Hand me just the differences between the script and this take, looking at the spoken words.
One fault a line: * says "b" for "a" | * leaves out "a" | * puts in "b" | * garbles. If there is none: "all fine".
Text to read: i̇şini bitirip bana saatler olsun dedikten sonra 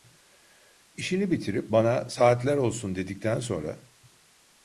all fine